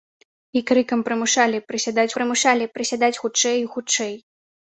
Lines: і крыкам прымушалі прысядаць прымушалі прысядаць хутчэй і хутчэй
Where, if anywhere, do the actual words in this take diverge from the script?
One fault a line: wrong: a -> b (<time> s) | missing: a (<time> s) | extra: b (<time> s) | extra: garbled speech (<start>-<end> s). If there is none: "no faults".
no faults